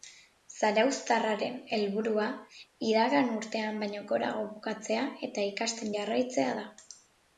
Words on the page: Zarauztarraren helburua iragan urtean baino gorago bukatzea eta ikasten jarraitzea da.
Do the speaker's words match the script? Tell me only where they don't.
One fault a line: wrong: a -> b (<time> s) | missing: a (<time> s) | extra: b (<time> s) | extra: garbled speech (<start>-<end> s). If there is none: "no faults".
no faults